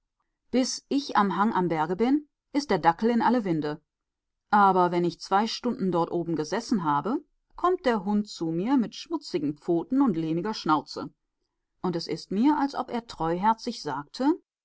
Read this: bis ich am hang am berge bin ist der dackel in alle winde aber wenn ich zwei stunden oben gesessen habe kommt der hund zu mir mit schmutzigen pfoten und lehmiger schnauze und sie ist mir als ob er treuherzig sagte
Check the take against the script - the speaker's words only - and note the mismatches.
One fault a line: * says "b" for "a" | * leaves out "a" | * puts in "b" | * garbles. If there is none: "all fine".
* puts in "dort"
* says "es" for "sie"